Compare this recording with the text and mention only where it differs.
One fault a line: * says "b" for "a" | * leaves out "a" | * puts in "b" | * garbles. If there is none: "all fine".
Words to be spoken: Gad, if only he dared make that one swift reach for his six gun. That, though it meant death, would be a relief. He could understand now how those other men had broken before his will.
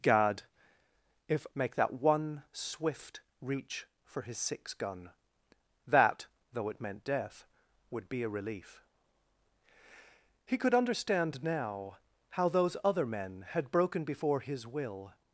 * leaves out "only he dared"